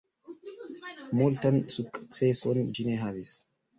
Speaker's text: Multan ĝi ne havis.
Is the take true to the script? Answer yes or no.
no